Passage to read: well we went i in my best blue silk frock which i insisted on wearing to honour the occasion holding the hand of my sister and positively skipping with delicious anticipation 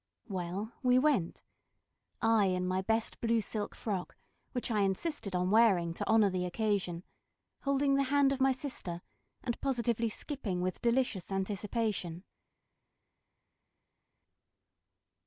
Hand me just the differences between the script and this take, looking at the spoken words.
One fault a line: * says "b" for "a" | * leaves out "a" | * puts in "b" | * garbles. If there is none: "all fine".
all fine